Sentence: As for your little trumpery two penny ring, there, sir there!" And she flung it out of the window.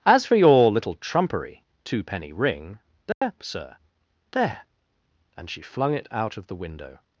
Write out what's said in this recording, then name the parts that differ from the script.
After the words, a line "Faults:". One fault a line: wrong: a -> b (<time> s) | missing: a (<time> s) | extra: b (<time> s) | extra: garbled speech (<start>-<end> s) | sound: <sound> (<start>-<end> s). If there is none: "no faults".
As for your little trumpery two penny ring, there, sir there!" And she flung it out of the window.
Faults:
sound: dropout (3.1-3.2 s)